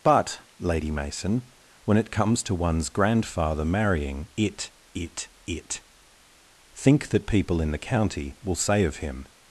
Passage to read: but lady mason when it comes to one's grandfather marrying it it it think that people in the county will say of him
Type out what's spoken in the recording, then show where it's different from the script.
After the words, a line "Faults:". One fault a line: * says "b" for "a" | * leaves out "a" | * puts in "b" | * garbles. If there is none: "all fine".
but lady mason when it comes to one's grandfather marrying it it it think that people in the county will say of him
Faults:
all fine